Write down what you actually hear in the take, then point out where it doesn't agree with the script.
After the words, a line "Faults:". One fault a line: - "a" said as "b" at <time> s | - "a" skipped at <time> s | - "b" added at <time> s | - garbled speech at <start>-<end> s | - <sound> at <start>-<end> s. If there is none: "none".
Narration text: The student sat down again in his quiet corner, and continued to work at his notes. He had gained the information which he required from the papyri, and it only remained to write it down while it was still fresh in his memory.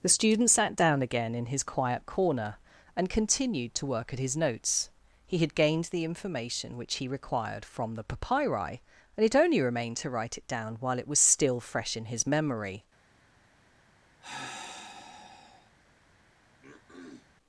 The student sat down again in his quiet corner, and continued to work at his notes. He had gained the information which he required from the papyri, and it only remained to write it down while it was still fresh in his memory.
Faults:
- sigh at 14.2-15.7 s
- throat clearing at 16.6-17.3 s